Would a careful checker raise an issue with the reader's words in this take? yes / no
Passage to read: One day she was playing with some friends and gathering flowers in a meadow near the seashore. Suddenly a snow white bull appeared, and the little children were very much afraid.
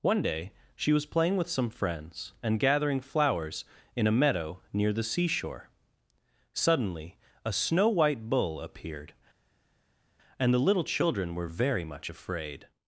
no